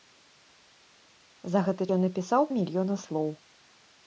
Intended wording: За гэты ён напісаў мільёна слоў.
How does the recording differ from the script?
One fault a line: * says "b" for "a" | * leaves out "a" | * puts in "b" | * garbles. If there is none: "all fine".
all fine